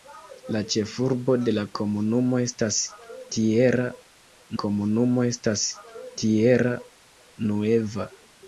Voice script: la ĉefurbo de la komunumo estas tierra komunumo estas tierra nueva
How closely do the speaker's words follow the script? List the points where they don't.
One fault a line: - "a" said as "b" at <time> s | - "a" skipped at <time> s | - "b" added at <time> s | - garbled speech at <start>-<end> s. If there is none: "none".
none